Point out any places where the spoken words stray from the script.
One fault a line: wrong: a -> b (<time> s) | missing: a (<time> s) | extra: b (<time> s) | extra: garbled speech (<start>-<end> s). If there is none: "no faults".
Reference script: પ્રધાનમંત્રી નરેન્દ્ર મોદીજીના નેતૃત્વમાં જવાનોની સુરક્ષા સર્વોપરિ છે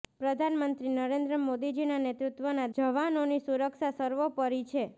no faults